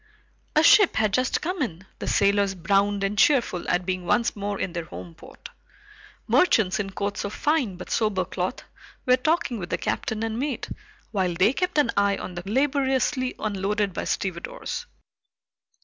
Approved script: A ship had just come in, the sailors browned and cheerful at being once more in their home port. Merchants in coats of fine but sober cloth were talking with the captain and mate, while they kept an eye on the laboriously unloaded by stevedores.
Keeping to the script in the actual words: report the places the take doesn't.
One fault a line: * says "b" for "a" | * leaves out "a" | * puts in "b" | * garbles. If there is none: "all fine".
all fine